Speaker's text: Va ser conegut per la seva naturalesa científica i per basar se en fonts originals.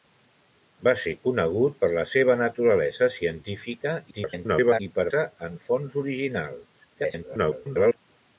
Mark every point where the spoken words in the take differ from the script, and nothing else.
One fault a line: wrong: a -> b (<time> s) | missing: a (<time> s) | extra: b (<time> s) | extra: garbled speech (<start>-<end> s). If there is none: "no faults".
extra: garbled speech (4.1-4.8 s)
missing: basar (5.1 s)
extra: garbled speech (6.9-8.0 s)